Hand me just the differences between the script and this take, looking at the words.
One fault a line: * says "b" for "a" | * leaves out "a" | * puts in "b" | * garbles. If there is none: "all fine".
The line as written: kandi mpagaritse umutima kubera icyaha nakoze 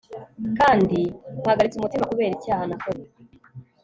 all fine